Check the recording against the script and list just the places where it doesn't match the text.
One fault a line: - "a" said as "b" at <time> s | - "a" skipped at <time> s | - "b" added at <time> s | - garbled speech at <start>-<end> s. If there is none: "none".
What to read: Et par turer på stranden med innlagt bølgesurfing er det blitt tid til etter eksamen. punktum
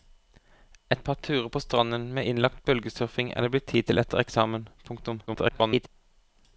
- garbled speech at 5.3-5.9 s